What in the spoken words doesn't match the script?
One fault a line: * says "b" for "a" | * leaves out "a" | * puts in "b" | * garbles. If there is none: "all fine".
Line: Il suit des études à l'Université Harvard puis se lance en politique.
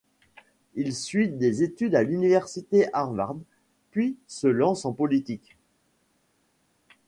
all fine